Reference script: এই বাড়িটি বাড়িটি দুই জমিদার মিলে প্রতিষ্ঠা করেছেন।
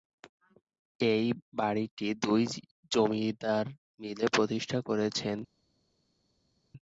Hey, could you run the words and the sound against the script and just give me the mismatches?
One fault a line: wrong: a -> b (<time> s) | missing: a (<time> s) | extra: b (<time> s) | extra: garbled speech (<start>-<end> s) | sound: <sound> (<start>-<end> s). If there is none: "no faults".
missing: বাড়িটি (2.1 s)